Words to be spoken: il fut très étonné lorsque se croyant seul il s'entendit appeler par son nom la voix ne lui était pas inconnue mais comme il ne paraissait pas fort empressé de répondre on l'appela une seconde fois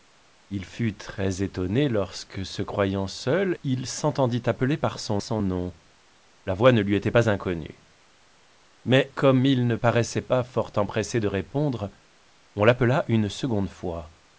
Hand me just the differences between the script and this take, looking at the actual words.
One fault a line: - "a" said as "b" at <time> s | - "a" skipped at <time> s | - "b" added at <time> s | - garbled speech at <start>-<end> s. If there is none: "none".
- "son" added at 5.2 s